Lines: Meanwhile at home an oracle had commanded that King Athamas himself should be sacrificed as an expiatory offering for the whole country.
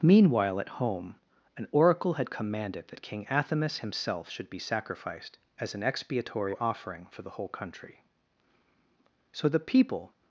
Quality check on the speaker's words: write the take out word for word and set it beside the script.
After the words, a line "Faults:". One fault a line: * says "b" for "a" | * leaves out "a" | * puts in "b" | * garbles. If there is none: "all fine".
Meanwhile at home an oracle had commanded that King Athamas himself should be sacrificed as an expiatory offering for the whole country. So the people
Faults:
* puts in "So the people"